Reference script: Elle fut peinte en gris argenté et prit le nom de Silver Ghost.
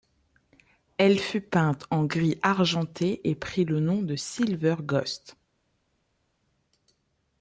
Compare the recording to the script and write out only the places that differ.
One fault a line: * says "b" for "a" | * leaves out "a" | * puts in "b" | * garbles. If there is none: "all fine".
all fine